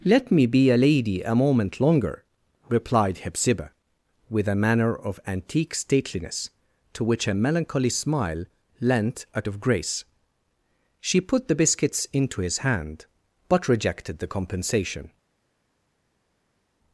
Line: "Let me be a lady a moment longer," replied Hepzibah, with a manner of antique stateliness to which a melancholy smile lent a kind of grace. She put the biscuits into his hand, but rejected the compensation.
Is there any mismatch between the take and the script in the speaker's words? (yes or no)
yes